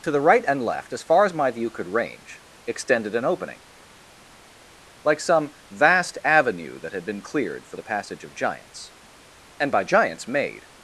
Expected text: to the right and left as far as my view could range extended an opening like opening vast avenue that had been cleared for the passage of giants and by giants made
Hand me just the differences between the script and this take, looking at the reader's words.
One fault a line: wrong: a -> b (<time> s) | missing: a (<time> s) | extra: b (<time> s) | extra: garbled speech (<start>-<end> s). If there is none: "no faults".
wrong: opening -> some (5.2 s)